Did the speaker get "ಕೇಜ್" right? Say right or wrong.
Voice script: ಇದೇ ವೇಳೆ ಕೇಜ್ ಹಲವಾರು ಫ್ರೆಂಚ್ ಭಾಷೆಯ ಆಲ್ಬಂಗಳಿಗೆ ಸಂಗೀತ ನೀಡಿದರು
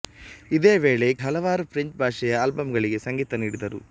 wrong